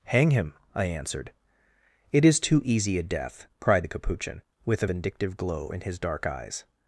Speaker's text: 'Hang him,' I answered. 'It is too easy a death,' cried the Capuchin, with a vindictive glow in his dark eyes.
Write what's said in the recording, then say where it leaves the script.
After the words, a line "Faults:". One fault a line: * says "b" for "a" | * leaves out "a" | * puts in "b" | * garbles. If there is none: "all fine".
'Hang him,' I answered. 'It is too easy a death,' cried the Capuchin, with a vindictive glow in his dark eyes.
Faults:
all fine